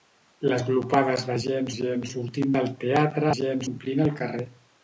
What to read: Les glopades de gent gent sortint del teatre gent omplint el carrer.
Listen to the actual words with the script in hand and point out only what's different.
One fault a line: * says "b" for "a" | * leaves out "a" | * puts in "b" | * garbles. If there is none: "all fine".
all fine